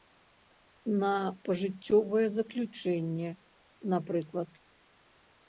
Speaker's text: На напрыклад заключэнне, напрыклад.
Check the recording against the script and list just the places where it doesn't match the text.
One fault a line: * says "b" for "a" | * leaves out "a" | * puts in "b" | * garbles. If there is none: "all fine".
* says "пажыццёвае" for "напрыклад"